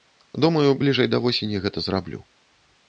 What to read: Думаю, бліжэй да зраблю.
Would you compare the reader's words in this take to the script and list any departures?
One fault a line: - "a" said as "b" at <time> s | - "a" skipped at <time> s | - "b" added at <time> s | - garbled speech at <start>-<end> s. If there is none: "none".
- "восені гэта" added at 1.3 s